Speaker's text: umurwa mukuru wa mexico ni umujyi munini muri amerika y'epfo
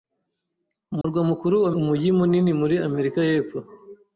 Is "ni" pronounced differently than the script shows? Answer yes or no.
yes